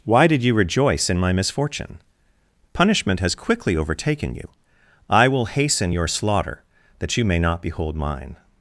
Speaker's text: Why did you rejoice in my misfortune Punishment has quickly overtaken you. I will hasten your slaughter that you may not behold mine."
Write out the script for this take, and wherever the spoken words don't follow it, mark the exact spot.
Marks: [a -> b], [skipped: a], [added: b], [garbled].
Why did you rejoice in my misfortune Punishment has quickly overtaken you. I will hasten your slaughter that you may not behold mine."